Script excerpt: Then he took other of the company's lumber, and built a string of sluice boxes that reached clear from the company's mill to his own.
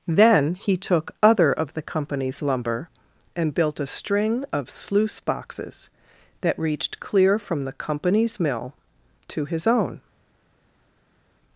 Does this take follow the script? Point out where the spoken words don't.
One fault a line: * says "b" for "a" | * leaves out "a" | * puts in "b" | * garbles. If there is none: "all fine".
all fine